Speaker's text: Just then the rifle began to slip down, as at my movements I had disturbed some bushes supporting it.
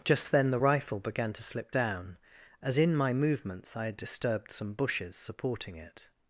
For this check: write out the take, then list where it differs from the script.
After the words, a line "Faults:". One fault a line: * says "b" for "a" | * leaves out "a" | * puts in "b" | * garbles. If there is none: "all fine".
Just then the rifle began to slip down, as in my movements I had disturbed some bushes supporting it.
Faults:
* says "in" for "at"